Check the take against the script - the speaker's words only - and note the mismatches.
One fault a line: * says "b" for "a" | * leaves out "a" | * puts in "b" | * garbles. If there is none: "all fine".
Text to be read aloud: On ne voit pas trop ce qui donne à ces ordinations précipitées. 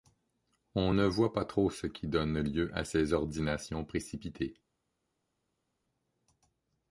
* puts in "lieu"